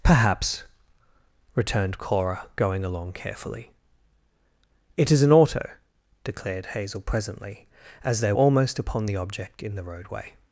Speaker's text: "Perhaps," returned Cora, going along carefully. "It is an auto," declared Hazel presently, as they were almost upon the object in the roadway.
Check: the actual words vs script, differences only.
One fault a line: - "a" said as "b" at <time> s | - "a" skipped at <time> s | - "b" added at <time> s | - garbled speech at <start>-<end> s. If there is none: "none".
- "were" skipped at 8.3 s